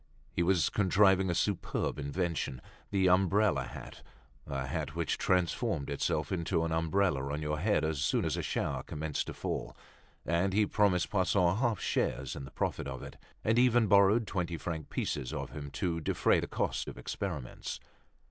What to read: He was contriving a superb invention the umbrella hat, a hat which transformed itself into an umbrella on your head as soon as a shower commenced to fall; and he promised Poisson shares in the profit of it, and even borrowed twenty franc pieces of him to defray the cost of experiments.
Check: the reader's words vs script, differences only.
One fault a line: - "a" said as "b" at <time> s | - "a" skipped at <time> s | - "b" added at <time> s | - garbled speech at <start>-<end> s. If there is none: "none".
- "half" added at 11.6 s